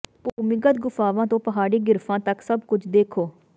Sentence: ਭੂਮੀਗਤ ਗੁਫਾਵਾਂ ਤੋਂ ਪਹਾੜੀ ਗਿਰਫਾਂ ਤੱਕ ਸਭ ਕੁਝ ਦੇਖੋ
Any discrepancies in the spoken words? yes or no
no